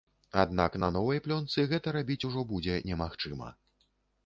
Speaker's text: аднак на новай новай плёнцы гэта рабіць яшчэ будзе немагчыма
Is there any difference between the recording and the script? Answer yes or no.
yes